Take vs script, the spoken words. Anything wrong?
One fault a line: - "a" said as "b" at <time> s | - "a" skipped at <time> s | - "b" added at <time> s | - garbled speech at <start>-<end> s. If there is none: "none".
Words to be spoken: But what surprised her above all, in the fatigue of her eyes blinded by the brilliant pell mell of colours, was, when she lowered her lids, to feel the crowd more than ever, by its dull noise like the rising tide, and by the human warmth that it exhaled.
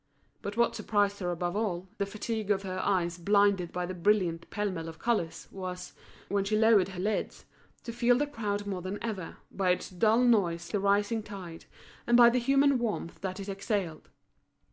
- "in" skipped at 1.9 s
- "like" skipped at 10.7 s